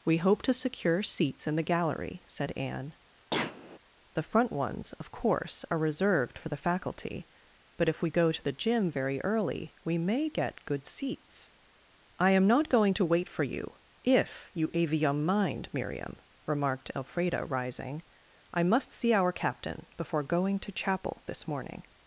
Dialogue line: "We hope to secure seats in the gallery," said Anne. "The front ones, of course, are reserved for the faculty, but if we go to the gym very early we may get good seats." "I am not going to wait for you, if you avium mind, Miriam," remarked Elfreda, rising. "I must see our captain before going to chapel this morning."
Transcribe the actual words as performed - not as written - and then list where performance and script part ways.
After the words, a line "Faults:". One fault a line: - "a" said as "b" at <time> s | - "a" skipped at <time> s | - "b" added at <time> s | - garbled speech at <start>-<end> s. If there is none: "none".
"We hope to secure seats in the gallery," said Anne. "The front ones, of course, are reserved for the faculty, but if we go to the gym very early we may get good seats." "I am not going to wait for you, if you avium mind, Miriam," remarked Elfreda, rising. "I must see our captain before going to chapel this morning."
Faults:
none